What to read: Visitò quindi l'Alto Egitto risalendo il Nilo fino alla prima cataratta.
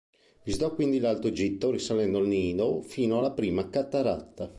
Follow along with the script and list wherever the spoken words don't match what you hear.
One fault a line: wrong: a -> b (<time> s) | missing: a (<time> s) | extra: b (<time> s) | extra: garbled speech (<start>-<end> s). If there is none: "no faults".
no faults